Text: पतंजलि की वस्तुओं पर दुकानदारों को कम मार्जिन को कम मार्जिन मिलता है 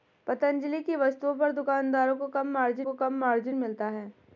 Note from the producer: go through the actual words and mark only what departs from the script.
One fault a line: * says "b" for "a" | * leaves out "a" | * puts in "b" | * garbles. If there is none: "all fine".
all fine